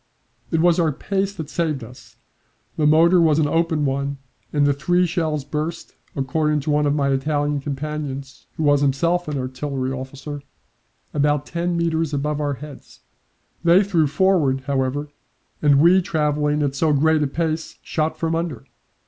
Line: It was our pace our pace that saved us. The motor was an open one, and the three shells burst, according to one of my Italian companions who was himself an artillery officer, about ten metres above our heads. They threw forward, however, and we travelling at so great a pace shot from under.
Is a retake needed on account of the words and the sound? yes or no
yes